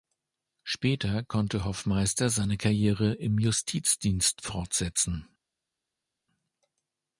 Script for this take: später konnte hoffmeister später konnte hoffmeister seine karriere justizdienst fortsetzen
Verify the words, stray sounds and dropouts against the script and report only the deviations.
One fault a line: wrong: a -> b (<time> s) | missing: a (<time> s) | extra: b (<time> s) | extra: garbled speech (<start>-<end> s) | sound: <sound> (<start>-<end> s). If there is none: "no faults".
missing: später konnte hoffmeister (2.3 s)
extra: im (3.1 s)